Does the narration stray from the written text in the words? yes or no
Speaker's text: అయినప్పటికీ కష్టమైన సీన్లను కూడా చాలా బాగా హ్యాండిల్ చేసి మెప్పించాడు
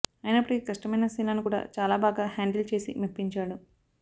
no